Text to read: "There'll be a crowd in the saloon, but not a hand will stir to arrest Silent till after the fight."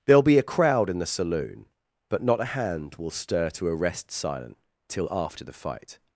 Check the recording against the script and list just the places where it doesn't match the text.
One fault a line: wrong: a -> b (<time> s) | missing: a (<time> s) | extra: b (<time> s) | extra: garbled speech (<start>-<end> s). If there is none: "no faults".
no faults